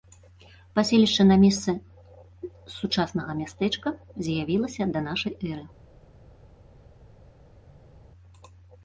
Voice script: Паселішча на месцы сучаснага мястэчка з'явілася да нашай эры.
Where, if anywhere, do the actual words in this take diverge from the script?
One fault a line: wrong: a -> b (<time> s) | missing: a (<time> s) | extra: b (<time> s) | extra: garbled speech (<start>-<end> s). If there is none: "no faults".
no faults